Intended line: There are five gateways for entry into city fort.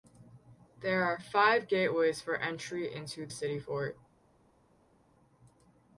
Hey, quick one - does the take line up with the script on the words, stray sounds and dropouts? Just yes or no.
yes